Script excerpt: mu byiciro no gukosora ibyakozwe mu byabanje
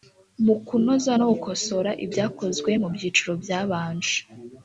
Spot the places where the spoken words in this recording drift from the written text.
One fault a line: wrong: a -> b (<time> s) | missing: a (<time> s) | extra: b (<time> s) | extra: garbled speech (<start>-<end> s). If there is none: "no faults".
wrong: byiciro -> kunoza (0.7 s)
extra: byiciro (2.9 s)